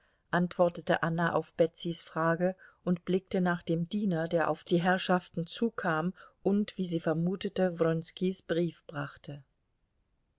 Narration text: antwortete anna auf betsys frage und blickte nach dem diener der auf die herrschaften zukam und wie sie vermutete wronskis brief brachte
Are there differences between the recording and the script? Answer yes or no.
no